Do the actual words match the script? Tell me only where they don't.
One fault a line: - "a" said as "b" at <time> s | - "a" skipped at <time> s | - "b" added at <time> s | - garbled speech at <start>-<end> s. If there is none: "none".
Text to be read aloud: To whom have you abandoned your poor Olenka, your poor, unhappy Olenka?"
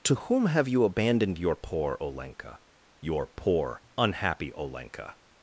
none